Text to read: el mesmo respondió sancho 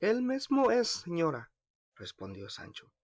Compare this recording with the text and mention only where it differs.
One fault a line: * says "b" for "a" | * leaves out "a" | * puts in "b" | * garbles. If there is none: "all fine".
* puts in "es señora"